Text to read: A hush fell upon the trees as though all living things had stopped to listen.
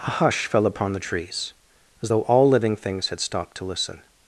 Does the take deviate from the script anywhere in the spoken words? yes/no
no